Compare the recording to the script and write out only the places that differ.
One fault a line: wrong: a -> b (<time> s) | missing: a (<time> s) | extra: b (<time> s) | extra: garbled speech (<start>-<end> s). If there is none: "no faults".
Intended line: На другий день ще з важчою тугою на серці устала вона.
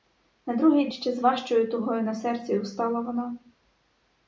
missing: день (0.9 s)